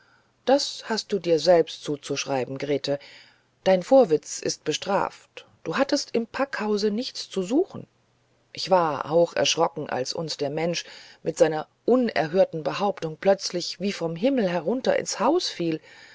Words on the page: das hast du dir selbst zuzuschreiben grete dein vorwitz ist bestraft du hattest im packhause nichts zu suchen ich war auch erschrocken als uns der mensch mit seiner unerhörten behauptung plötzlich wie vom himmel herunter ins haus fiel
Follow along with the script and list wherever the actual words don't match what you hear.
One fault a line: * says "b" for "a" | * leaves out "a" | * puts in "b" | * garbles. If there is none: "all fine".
all fine